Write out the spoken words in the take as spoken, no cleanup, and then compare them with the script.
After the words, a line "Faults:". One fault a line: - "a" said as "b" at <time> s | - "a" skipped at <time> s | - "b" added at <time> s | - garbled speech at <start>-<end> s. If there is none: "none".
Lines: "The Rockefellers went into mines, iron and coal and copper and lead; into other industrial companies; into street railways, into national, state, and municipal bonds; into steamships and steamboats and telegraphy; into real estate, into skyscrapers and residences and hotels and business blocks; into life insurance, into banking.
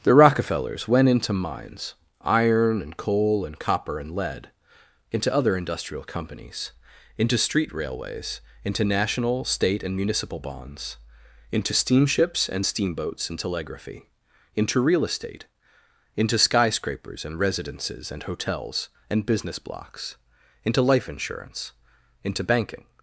"The Rockefellers went into mines, iron and coal and copper and lead; into other industrial companies; into street railways, into national, state, and municipal bonds; into steamships and steamboats and telegraphy; into real estate, into skyscrapers and residences and hotels and business blocks; into life insurance, into banking.
Faults:
none